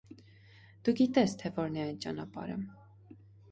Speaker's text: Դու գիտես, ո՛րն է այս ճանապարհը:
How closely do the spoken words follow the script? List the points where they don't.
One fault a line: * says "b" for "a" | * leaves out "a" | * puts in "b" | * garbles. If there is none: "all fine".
* puts in "թե"
* says "այդ" for "այս"